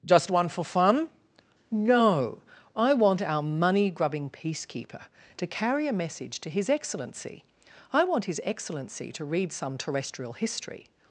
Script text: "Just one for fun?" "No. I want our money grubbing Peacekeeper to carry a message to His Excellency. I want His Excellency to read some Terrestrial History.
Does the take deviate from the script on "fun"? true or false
false